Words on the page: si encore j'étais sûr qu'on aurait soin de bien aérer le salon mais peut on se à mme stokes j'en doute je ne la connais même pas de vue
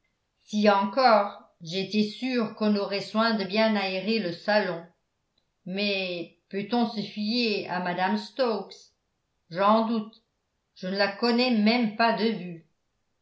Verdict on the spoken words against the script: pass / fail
fail